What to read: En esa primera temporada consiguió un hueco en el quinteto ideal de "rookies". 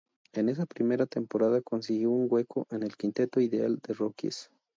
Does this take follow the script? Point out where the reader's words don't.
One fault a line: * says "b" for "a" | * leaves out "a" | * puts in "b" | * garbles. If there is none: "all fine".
all fine